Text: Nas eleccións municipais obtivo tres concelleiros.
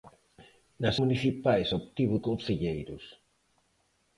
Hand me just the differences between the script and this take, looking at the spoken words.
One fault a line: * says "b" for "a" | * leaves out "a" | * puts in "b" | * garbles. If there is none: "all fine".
* leaves out "eleccións"
* leaves out "tres"